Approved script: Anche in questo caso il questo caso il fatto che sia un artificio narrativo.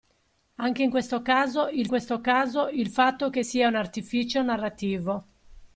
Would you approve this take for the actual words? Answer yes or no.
yes